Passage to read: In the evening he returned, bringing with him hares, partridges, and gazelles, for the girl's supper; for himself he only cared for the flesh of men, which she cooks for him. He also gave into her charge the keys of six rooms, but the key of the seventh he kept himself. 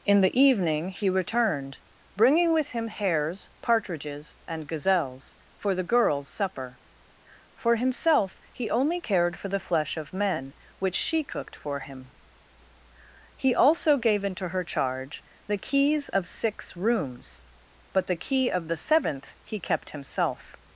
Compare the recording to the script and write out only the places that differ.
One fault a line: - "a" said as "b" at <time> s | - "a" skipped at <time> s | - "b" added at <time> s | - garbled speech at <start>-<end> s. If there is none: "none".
- "cooks" said as "cooked" at 11.2 s